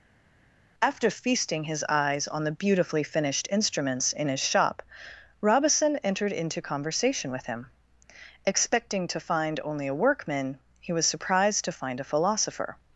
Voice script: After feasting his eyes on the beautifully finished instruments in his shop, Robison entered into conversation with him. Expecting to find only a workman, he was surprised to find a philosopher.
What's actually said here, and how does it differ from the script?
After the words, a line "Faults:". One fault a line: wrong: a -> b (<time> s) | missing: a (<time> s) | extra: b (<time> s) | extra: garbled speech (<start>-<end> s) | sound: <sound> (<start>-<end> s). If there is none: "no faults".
After feasting his eyes on the beautifully finished instruments in his shop, Robison entered into conversation with him. Expecting to find only a workman, he was surprised to find a philosopher.
Faults:
no faults